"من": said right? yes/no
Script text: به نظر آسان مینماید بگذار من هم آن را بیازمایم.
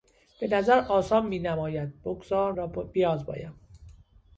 no